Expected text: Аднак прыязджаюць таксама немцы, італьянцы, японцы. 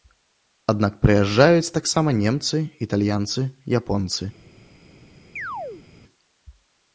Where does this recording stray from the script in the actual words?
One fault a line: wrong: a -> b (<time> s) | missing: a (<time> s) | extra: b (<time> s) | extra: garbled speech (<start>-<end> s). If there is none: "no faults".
no faults